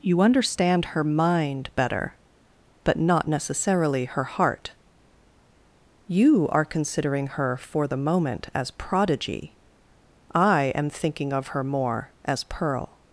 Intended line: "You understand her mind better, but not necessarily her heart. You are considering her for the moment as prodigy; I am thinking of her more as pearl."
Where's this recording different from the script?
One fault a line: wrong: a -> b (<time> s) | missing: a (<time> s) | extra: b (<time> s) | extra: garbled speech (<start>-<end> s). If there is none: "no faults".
no faults